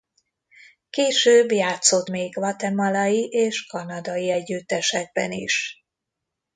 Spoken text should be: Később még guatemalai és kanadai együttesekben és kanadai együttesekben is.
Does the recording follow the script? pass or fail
fail